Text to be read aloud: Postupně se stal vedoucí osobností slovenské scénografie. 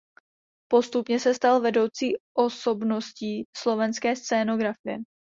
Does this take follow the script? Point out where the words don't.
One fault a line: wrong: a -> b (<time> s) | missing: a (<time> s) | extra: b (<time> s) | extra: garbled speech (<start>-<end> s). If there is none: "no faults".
no faults